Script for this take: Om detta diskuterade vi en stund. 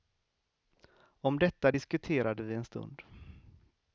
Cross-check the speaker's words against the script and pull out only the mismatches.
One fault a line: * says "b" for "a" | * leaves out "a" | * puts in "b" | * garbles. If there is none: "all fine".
all fine